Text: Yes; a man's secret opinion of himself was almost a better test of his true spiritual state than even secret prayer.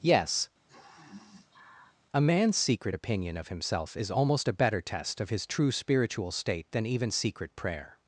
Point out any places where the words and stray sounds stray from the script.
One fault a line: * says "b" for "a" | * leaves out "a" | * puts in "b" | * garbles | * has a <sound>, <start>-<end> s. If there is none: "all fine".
* has a sniff, 0.7-2.0 s
* says "is" for "was"